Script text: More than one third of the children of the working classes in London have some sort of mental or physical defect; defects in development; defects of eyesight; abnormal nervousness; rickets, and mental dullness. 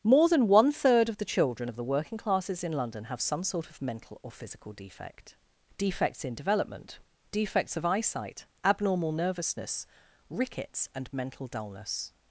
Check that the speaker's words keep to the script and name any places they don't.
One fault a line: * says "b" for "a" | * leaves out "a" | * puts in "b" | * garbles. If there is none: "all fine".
all fine